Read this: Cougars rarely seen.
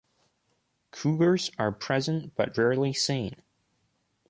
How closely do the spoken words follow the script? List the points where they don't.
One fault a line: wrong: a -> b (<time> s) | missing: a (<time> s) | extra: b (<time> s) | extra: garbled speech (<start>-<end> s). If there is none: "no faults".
extra: are present but (1.6 s)